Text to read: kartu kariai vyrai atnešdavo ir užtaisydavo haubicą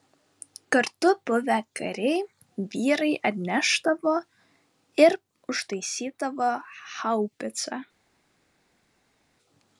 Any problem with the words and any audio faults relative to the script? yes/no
yes